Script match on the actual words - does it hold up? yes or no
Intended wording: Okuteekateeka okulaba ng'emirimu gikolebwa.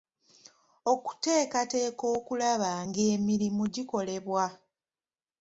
yes